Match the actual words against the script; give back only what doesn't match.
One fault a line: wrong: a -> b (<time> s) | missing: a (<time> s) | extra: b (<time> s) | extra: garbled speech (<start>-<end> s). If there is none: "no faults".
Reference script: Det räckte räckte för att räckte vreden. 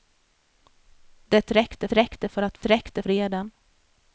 no faults